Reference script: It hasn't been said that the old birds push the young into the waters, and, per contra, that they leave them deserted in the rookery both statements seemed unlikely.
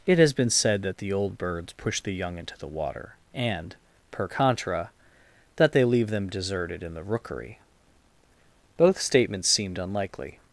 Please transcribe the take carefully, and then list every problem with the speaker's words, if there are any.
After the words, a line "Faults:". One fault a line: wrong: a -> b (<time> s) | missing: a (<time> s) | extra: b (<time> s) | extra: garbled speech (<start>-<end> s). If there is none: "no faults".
It has been said that the old birds push the young into the water, and, per contra, that they leave them deserted in the rookery both statements seemed unlikely.
Faults:
wrong: hasn't -> has (0.2 s)
wrong: waters -> water (2.7 s)